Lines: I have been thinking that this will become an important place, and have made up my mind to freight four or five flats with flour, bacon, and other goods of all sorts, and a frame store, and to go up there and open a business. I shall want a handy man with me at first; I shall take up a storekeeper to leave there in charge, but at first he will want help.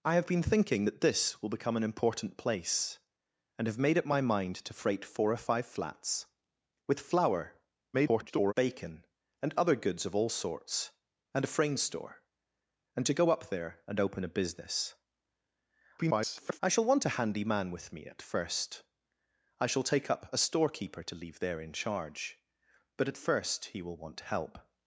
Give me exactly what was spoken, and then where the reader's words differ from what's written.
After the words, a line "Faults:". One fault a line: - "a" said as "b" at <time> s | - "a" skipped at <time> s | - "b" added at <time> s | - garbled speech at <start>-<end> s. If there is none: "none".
I have been thinking that this will become an important place, and have made up my mind to freight four or five flats with flour, [garbled] bacon, and other goods of all sorts, and a frame store, and to go up there and open a business. [garbled] I shall want a handy man with me at first; I shall take up a storekeeper to leave there in charge, but at first he will want help.
Faults:
- garbled speech at 7.9-8.5 s
- garbled speech at 16.0-16.6 s